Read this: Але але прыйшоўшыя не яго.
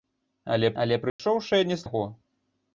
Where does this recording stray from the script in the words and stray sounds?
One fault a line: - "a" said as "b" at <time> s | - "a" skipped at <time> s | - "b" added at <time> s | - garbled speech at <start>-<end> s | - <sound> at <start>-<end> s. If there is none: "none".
- dropout at 1.1-1.2 s